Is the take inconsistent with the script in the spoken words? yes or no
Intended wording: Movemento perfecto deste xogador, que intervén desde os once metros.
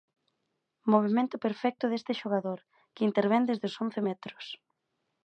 no